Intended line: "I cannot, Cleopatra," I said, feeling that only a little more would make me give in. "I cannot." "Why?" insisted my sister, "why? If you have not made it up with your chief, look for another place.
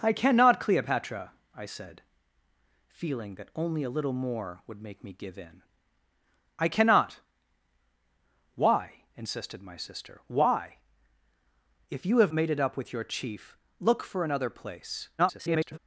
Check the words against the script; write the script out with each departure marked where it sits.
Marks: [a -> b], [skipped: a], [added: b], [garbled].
"I cannot, Cleopatra," I said, feeling that only a little more would make me give in. "I cannot." "Why?" insisted my sister, "why? If you have [skipped: not] made it up with your chief, look for another place. [garbled]